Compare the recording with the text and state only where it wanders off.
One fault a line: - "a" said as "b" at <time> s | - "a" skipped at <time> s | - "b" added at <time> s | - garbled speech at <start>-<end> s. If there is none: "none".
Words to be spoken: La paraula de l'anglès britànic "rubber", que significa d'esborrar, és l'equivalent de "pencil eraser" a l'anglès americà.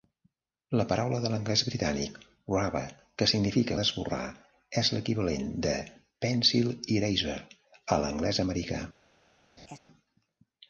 none